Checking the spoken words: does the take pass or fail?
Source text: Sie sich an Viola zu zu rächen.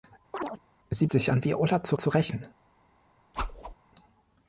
pass